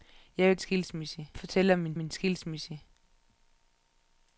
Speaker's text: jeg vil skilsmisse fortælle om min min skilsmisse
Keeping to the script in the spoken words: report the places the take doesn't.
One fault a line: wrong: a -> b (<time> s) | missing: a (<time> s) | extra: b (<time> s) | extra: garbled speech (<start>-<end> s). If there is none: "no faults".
no faults